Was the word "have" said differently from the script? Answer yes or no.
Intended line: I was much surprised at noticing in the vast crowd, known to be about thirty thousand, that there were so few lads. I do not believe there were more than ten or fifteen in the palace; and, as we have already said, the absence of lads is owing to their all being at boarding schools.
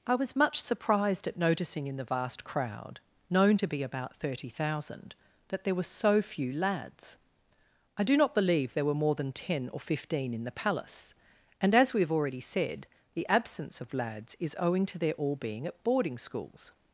no